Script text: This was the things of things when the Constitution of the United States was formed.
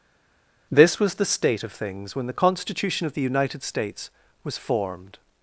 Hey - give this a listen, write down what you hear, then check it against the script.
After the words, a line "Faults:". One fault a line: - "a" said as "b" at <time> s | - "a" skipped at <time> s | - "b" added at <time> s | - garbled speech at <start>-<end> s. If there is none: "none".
This was the state of things when the Constitution of the United States was formed.
Faults:
- "things" said as "state" at 1.2 s